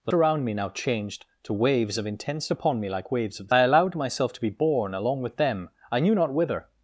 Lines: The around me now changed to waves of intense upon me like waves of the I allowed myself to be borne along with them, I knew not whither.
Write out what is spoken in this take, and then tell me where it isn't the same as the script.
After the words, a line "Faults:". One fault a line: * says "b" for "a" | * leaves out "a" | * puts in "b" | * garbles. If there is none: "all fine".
The around me now changed to waves of intense upon me like waves of the I allowed myself to be borne along with them, I knew not whither.
Faults:
all fine